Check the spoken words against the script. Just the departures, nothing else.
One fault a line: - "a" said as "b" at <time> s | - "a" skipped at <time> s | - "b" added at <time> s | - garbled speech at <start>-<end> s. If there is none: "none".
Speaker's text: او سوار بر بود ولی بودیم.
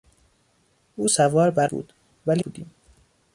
none